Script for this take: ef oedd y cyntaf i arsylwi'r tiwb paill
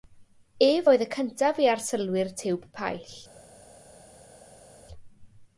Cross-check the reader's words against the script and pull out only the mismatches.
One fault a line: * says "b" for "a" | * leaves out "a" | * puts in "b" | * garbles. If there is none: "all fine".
all fine